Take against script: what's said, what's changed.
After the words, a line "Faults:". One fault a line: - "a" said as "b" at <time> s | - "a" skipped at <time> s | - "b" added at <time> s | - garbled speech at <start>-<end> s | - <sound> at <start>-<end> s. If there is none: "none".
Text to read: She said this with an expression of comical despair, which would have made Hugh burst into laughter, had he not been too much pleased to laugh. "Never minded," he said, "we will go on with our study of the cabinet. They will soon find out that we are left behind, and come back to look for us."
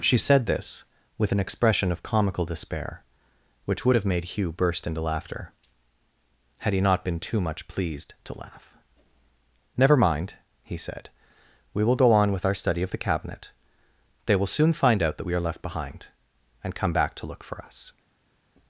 She said this with an expression of comical despair, which would have made Hugh burst into laughter, had he not been too much pleased to laugh. "Never mind," he said, "we will go on with our study of the cabinet. They will soon find out that we are left behind, and come back to look for us."
Faults:
- "minded" said as "mind" at 10.0 s